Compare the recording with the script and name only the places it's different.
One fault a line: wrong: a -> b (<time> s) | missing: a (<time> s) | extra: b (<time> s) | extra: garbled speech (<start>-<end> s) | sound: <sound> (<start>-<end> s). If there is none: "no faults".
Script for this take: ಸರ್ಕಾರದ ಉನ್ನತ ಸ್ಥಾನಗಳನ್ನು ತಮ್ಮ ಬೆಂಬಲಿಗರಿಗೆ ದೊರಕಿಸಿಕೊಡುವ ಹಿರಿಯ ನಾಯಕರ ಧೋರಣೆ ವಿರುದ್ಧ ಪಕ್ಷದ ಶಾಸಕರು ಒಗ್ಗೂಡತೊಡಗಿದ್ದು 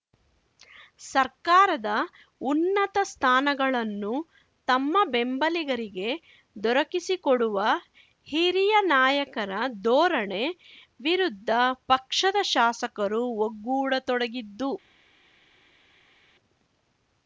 no faults